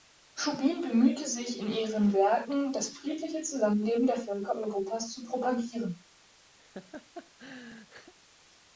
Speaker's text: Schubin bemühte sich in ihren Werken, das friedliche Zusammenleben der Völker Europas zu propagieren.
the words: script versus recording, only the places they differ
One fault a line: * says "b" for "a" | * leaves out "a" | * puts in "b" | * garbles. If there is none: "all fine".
all fine